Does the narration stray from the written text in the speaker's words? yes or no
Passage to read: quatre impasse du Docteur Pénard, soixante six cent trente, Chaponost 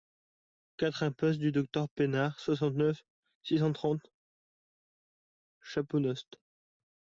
yes